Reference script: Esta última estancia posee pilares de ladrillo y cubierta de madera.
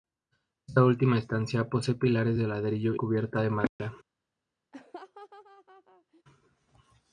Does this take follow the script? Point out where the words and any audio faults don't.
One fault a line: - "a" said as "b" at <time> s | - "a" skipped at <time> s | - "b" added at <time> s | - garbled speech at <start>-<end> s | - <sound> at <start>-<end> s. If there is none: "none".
- "y" skipped at 2.9 s
- dropout at 3.7-3.8 s
- laugh at 4.7-6.2 s